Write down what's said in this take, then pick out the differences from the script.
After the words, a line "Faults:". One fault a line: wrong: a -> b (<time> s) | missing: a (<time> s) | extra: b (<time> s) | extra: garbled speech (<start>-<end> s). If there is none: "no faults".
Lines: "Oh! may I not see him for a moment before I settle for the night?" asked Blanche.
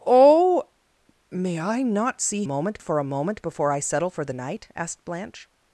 "Oh! may I not see moment for a moment before I settle for the night?" asked Blanche.
Faults:
wrong: him -> moment (2.4 s)